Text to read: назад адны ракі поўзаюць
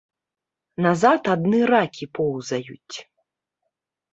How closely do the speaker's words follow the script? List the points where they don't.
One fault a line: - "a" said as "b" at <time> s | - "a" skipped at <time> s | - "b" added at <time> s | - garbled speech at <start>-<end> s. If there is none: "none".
none